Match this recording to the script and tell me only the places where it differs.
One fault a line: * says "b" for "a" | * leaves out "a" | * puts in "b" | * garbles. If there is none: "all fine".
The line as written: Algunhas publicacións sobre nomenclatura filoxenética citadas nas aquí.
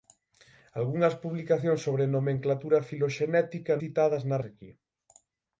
all fine